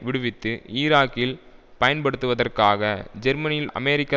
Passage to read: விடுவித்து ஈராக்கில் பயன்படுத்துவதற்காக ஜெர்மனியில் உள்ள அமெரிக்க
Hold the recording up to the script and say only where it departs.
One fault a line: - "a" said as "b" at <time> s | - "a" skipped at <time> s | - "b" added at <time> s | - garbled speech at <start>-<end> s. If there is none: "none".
- "உள்ள" skipped at 3.7 s